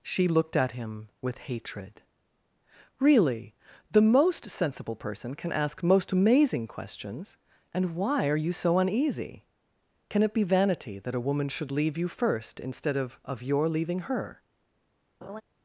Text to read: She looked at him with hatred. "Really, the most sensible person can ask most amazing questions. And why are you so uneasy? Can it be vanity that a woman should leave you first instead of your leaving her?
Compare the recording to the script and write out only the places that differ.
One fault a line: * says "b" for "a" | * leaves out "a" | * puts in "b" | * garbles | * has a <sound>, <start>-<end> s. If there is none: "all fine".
* puts in "of"
* has a laugh, 15.2-15.4 s